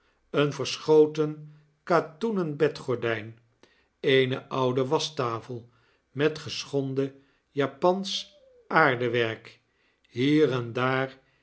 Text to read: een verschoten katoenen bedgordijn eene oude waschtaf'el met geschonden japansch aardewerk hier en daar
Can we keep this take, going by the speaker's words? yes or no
yes